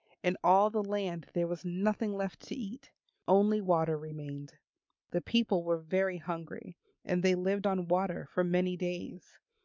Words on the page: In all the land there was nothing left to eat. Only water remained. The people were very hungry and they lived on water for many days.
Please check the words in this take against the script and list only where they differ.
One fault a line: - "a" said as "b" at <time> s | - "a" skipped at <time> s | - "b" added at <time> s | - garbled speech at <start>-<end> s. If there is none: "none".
none